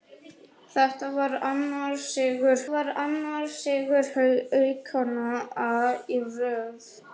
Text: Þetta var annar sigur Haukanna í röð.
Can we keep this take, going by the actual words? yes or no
no